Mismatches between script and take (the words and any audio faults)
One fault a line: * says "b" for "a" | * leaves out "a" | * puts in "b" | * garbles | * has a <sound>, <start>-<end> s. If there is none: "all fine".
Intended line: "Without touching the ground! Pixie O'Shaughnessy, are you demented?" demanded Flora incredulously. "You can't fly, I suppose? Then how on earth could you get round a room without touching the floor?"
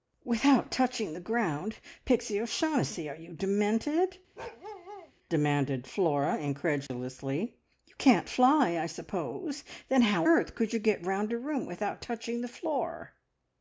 * has a bark, 4.4-5.1 s
* has a dropout, 6.9-6.9 s
* leaves out "on"